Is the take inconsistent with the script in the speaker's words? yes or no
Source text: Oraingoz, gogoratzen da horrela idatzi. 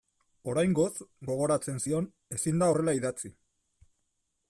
yes